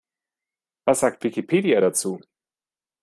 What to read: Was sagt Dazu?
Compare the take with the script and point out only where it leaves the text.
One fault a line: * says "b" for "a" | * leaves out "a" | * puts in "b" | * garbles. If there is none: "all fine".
* puts in "Wikipedia"